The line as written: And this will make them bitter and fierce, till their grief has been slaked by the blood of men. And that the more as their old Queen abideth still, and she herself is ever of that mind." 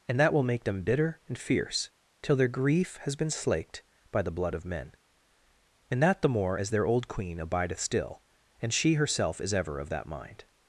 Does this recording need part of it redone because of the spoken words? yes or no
yes